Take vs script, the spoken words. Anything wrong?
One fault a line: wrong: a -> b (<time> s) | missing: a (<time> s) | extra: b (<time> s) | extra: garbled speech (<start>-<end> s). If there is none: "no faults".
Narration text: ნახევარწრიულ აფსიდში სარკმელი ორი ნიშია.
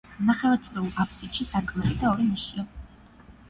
extra: და (2.0 s)